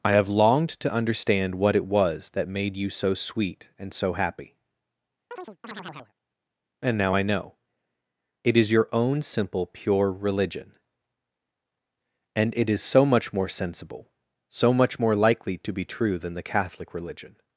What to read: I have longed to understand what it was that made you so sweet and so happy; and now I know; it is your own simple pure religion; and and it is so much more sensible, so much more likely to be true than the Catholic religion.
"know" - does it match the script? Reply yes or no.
yes